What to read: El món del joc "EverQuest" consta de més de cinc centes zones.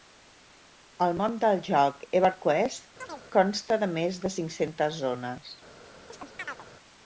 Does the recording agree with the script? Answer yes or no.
yes